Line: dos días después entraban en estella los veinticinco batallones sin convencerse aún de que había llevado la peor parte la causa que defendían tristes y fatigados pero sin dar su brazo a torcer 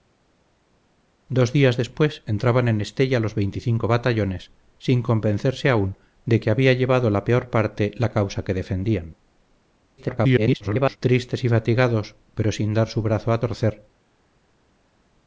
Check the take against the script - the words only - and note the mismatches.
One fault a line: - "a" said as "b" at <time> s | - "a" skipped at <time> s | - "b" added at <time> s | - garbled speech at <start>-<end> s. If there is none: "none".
- garbled speech at 10.0-11.0 s